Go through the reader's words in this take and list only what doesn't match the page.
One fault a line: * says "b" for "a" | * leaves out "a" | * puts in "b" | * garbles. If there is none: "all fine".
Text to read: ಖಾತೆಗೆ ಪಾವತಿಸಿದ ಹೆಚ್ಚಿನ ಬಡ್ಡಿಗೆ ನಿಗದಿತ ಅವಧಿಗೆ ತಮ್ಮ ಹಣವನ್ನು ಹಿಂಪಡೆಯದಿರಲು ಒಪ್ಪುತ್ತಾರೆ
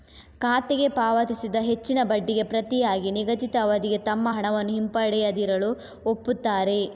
* puts in "ಪ್ರತಿಯಾಗಿ"